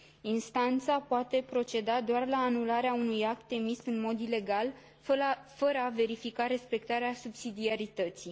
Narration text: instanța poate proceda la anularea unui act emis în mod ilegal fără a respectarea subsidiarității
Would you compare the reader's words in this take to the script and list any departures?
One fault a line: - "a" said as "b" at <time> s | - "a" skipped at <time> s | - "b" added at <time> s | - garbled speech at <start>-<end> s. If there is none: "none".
- "doar" added at 2.0 s
- "verifica" added at 5.9 s